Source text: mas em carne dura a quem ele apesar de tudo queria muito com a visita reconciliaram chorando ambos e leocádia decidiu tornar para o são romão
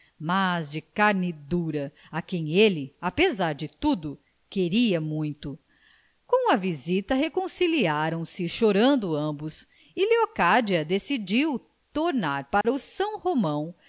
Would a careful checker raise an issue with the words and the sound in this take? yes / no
yes